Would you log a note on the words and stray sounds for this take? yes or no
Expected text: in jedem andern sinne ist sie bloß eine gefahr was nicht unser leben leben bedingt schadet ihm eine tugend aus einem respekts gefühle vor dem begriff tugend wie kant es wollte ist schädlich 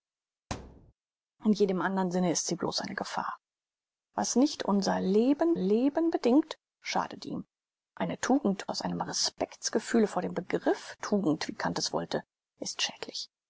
yes